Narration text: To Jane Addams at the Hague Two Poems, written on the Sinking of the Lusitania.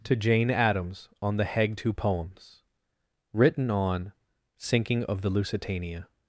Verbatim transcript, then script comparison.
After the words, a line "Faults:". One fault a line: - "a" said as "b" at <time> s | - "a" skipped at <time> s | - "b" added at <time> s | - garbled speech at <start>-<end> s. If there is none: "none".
To Jane Addams on the Hague Two Poems, written on Sinking of the Lusitania.
Faults:
- "at" said as "on" at 1.2 s
- "the" skipped at 4.1 s